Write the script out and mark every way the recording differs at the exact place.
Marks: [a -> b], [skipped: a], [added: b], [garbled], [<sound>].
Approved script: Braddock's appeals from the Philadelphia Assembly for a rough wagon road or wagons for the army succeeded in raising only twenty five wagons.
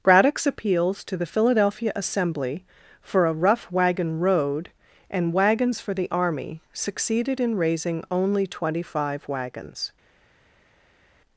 Braddock's appeals [from -> to] the Philadelphia Assembly for a rough wagon road [or -> and] wagons for the army succeeded in raising only twenty five wagons.